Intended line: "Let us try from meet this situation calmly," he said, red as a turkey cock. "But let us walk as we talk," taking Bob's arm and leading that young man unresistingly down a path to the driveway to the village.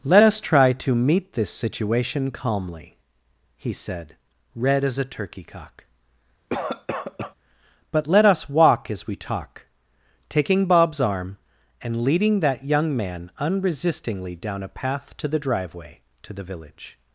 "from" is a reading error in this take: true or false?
true